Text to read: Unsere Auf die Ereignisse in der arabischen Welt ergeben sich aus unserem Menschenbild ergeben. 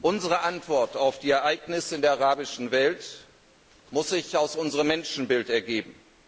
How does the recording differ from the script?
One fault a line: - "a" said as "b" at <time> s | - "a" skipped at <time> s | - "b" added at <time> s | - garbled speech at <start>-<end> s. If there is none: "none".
- "Antwort" added at 0.4 s
- "ergeben" said as "muss" at 3.9 s